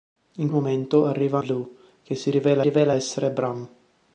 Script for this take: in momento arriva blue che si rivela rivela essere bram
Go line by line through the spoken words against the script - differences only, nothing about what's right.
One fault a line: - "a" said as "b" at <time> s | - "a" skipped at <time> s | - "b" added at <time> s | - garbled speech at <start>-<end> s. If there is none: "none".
none